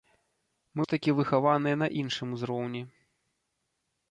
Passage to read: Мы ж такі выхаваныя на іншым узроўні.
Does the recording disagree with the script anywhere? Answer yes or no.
no